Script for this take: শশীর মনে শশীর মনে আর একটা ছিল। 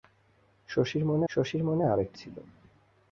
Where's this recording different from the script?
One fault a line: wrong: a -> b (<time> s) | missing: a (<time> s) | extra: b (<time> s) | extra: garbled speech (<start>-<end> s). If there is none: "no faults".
no faults